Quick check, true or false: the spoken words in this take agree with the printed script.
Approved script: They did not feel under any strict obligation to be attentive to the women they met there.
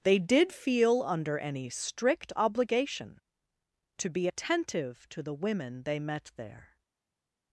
false